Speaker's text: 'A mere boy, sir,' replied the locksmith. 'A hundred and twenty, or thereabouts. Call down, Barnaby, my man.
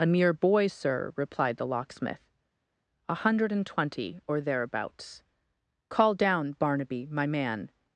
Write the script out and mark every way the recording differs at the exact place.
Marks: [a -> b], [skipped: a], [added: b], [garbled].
'A mere boy, sir,' replied the locksmith. 'A hundred and twenty, or thereabouts. Call down, Barnaby, my man.